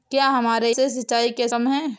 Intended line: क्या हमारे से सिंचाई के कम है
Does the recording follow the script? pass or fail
pass